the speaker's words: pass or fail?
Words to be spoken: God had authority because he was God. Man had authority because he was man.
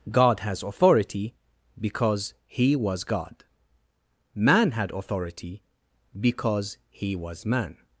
fail